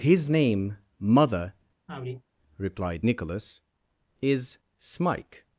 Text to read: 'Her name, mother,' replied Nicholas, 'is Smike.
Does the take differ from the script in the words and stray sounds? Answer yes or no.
yes